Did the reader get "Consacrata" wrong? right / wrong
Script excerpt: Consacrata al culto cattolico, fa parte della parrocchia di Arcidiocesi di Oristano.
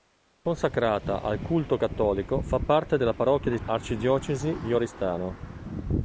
right